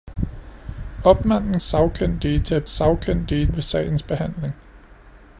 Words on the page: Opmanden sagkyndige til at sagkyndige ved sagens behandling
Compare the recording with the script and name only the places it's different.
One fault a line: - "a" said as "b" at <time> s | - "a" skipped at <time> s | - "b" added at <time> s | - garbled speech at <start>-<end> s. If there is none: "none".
none